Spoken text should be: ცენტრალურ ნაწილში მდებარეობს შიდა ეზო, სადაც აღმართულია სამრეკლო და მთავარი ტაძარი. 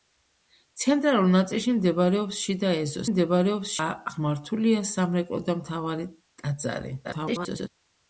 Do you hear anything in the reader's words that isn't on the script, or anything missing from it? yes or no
yes